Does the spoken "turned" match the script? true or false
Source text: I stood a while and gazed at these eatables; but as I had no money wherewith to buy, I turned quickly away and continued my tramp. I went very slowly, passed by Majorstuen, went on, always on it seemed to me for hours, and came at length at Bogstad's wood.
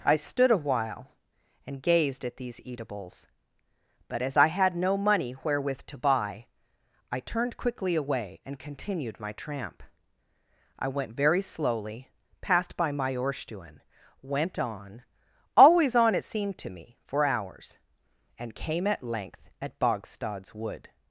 true